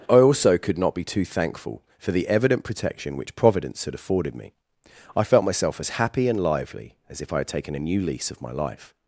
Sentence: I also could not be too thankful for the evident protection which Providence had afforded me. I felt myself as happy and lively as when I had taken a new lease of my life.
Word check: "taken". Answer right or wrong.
right